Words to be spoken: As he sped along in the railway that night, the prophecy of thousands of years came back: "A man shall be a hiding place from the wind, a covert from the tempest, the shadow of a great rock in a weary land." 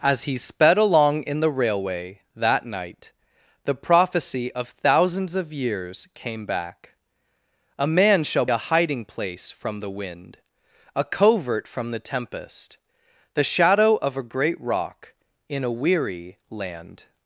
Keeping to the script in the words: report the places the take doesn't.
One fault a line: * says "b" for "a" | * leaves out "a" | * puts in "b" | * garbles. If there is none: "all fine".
* leaves out "be"